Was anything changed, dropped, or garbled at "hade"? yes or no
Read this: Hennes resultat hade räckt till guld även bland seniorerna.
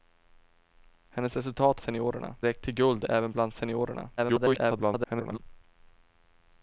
yes